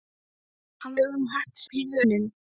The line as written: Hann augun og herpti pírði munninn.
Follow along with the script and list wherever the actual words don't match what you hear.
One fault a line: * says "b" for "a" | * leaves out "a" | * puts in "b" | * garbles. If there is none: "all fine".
all fine